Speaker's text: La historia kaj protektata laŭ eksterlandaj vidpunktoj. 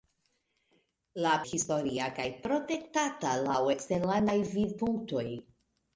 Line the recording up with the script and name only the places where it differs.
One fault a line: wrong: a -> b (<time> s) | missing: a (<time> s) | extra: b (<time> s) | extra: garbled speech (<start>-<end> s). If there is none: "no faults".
no faults